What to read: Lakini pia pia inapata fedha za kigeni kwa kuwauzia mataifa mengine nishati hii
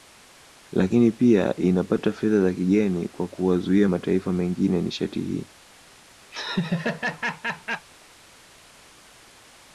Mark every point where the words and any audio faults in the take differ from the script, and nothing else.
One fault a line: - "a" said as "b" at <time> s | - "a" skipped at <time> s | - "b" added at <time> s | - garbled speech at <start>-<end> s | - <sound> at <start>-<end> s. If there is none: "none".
- "pia" skipped at 1.6 s
- laugh at 6.3-7.9 s